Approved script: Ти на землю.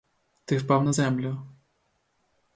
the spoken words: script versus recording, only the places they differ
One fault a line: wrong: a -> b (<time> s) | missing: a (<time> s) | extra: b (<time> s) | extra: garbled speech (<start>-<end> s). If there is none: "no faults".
extra: впав (0.6 s)